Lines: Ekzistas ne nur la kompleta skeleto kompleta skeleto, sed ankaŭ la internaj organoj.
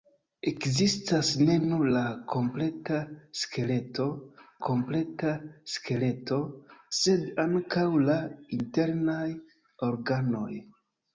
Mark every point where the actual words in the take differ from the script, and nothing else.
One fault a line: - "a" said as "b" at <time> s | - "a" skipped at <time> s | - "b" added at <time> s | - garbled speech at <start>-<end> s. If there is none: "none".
none